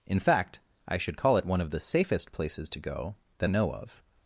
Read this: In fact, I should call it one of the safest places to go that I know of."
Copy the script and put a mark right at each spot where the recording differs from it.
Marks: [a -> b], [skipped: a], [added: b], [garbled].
In fact, I should call it one of the safest places to go that [skipped: I] know of."